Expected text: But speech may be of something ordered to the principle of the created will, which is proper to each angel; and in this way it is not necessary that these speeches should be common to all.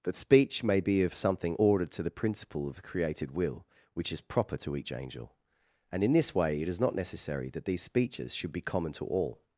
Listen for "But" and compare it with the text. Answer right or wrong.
wrong